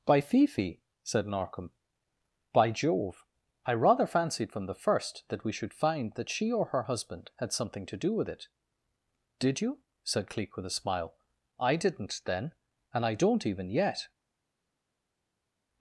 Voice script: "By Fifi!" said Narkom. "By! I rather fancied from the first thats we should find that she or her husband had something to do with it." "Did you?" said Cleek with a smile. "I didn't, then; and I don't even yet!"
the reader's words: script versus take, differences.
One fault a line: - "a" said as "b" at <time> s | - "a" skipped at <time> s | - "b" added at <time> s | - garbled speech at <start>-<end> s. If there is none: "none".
- "Jove" added at 2.7 s
- "thats" said as "that" at 5.3 s